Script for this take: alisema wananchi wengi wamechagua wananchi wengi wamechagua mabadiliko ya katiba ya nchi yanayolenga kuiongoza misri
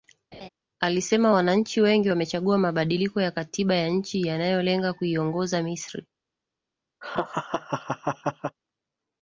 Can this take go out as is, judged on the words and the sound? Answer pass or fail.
fail